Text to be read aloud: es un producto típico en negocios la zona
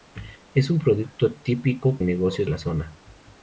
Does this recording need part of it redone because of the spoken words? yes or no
no